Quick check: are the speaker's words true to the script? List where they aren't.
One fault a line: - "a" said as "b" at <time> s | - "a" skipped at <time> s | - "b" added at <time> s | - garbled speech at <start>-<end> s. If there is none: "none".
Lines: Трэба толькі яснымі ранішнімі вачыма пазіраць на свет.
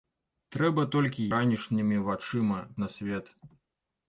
- "яснымі" skipped at 1.2 s
- "пазіраць" skipped at 2.6 s